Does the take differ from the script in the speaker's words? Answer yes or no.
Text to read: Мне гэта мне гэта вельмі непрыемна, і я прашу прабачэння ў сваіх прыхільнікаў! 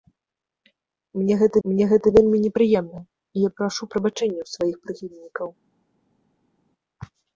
no